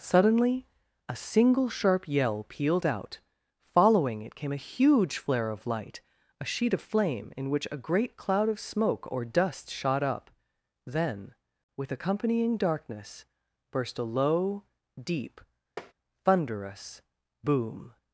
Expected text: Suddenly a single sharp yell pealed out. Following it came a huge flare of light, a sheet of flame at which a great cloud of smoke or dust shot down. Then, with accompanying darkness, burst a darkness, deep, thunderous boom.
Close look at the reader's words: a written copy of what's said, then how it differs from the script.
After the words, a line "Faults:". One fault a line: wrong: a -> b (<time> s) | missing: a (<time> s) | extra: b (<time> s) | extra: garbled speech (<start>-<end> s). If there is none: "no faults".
Suddenly a single sharp yell pealed out. Following it came a huge flare of light, a sheet of flame in which a great cloud of smoke or dust shot up. Then, with accompanying darkness, burst a low, deep, thunderous boom.
Faults:
wrong: at -> in (7.3 s)
wrong: down -> up (10.0 s)
wrong: darkness -> low (14.0 s)